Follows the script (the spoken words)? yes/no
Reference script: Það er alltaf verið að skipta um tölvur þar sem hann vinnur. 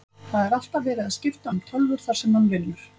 yes